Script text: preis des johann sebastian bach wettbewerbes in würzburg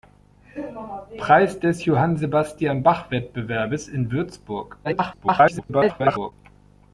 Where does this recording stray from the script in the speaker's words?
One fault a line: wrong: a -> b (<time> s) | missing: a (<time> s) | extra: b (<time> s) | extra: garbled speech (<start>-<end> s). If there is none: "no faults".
extra: garbled speech (4.8-6.3 s)